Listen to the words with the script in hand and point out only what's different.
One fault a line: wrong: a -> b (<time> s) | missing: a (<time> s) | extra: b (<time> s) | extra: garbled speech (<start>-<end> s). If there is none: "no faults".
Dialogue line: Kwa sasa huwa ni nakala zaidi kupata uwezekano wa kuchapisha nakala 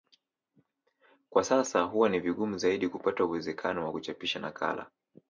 wrong: nakala -> vigumu (2.2 s)